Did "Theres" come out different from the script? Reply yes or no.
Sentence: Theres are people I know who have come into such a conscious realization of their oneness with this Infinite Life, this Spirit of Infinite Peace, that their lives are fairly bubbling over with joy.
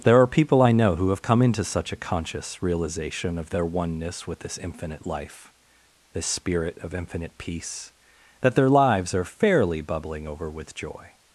yes